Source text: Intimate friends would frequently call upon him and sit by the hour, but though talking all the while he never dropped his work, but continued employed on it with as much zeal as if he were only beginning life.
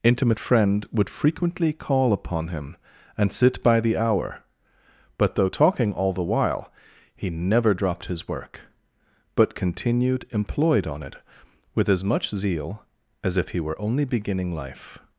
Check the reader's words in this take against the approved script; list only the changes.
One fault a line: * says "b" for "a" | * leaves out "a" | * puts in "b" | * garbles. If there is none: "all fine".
* says "friend" for "friends"